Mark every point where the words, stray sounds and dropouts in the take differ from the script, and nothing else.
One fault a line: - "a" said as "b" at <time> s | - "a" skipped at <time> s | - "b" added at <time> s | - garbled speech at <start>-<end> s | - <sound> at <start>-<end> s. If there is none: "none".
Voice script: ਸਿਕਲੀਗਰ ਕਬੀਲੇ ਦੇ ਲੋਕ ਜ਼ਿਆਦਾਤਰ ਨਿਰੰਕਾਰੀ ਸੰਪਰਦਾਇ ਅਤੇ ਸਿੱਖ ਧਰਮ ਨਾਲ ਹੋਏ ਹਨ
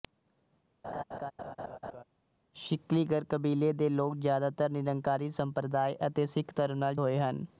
- laugh at 0.8-2.0 s